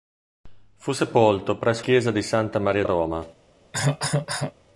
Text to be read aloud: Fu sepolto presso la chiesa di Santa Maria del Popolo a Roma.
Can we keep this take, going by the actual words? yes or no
no